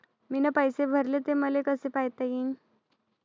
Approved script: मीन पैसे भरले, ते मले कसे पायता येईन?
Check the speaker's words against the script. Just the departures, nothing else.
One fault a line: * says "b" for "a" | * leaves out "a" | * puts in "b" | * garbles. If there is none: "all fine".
all fine